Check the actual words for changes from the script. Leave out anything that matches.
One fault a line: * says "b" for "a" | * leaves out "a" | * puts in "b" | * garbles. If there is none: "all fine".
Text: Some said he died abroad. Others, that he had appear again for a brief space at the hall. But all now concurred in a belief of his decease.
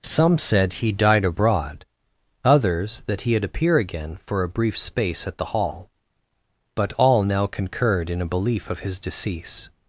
all fine